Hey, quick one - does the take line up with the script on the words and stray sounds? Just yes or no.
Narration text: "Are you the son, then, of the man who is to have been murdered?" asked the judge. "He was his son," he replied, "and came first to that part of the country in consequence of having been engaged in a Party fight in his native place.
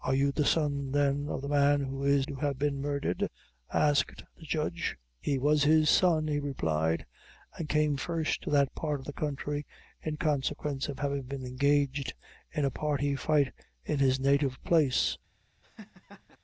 no